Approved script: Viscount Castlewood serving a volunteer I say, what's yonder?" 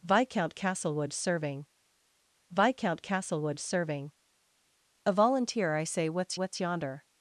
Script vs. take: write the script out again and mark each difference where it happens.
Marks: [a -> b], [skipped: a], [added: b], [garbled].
Viscount Castlewood serving [added: viscount Castlewood serving] a volunteer I say, what's [added: what's] yonder?"